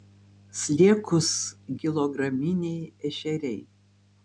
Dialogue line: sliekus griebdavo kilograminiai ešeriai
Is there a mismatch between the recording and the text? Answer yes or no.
yes